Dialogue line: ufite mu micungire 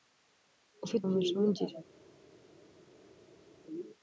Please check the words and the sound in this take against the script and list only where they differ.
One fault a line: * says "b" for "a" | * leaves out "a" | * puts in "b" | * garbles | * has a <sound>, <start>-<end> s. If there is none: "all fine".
all fine